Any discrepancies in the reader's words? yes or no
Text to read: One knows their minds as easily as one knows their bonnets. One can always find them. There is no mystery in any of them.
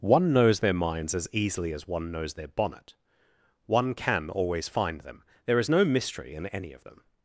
yes